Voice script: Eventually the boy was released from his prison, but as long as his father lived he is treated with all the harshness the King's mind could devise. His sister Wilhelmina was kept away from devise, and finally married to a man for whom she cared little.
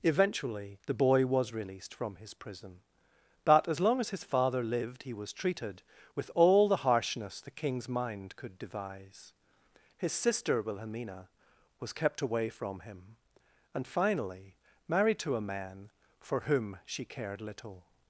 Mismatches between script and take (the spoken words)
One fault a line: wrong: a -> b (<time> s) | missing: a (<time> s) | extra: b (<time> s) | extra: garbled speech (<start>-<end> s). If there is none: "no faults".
wrong: is -> was (5.1 s)
wrong: devise -> him (12.8 s)